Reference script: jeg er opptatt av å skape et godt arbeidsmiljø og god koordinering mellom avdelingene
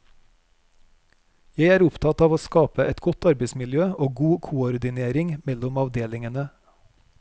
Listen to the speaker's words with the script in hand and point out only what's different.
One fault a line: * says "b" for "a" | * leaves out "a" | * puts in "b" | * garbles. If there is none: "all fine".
all fine